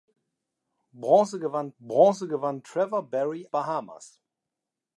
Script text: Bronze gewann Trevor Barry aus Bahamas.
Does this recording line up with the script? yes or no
no